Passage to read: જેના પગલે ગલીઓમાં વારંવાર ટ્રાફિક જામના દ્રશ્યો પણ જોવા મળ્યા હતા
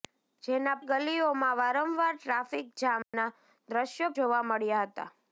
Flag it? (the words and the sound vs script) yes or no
yes